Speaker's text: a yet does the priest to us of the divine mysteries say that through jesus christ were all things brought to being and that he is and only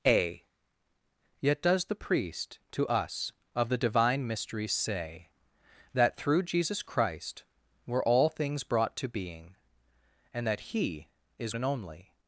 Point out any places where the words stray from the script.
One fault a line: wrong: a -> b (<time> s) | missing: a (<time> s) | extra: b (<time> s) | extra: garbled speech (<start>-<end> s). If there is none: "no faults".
no faults